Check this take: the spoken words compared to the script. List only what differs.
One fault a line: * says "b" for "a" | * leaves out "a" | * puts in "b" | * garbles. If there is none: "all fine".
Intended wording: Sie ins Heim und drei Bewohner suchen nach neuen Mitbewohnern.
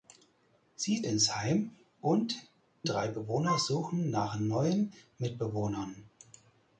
all fine